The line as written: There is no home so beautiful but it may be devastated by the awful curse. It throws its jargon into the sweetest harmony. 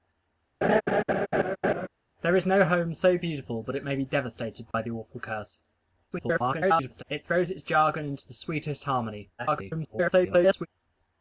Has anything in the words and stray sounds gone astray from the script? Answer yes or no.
yes